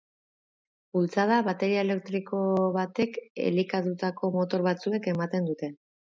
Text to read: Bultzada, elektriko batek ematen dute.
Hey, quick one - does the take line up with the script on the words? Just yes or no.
no